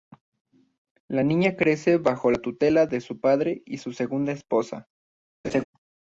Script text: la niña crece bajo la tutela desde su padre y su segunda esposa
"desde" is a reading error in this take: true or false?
true